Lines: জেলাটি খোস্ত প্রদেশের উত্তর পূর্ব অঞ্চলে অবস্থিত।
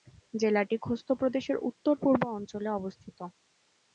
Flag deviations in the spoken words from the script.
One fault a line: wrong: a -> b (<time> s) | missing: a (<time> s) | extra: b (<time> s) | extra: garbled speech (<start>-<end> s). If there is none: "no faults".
no faults